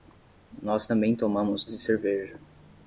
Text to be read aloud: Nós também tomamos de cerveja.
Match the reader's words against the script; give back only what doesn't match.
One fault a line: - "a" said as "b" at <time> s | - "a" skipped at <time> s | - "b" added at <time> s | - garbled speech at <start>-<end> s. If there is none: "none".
none